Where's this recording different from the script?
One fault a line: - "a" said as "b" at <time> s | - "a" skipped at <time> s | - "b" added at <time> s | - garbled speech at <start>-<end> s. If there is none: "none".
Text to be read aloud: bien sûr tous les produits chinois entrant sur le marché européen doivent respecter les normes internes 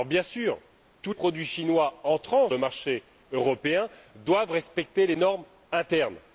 - "les" skipped at 1.1 s
- "sur" skipped at 2.5 s